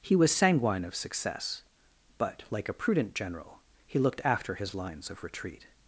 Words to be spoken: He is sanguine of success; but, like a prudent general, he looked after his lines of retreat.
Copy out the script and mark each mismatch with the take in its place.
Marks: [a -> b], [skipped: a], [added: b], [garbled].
He [is -> was] sanguine of success; but, like a prudent general, he looked after his lines of retreat.